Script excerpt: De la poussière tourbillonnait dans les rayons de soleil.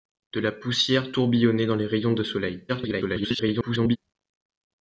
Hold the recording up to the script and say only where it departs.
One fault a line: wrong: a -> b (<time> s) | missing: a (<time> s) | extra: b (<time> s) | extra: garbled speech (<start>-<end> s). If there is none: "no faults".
extra: garbled speech (2.7-4.0 s)